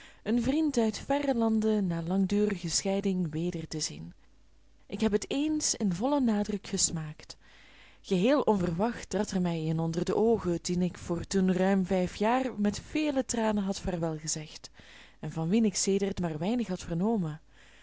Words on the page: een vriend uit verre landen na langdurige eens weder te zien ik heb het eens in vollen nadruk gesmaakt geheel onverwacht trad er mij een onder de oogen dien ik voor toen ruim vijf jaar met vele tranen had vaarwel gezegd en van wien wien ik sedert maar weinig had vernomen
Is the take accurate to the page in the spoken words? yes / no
no